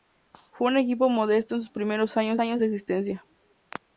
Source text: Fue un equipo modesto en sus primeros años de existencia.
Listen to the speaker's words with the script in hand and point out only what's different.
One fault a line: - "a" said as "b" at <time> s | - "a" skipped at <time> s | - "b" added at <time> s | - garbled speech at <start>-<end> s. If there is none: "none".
- "años" added at 2.4 s